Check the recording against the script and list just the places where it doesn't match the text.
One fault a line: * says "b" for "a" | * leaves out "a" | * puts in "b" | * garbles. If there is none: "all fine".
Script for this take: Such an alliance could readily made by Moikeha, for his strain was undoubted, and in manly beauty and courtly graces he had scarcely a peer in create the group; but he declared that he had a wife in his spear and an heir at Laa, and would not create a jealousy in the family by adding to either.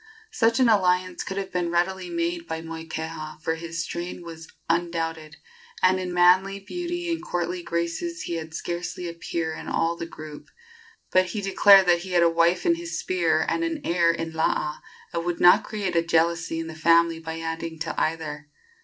* puts in "have been"
* says "all" for "create"
* says "in" for "at"